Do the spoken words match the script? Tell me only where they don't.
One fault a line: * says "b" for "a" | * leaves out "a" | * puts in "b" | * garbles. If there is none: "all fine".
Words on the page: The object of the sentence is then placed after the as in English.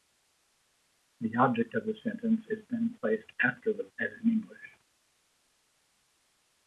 all fine